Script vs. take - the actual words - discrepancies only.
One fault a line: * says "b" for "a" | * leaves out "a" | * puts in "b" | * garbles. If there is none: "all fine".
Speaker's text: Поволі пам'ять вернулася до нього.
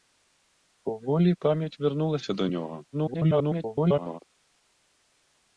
* garbles